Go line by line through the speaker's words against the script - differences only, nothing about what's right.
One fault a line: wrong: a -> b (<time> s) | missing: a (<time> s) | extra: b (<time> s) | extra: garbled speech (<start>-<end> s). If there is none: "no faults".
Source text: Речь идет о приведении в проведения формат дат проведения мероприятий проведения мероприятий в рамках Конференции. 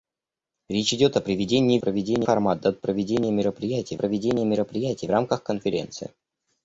no faults